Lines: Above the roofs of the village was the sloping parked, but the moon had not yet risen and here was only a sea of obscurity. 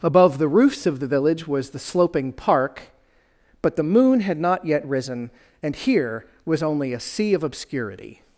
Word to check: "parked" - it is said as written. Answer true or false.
false